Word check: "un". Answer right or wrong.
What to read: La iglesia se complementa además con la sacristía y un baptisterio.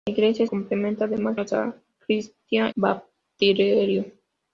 wrong